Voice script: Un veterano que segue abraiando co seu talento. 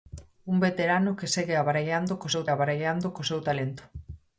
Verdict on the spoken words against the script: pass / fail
fail